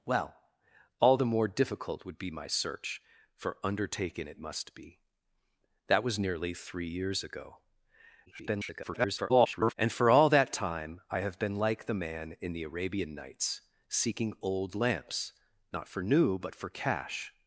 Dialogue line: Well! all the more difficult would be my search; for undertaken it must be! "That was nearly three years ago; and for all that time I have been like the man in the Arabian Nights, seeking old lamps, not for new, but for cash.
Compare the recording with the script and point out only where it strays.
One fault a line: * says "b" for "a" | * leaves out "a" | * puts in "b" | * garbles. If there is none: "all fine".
* garbles